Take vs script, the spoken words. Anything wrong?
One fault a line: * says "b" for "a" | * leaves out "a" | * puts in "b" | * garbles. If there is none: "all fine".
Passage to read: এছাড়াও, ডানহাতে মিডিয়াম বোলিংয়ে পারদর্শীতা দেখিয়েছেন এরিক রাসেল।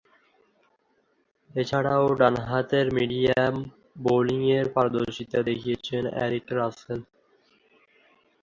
all fine